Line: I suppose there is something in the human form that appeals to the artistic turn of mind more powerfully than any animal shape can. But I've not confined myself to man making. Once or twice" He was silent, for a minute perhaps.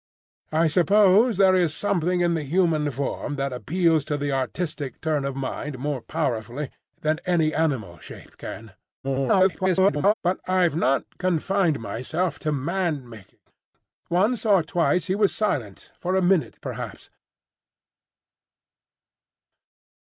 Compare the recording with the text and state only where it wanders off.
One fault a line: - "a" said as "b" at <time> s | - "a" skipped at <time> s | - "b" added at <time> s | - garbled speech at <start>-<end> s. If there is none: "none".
- garbled speech at 9.0-10.1 s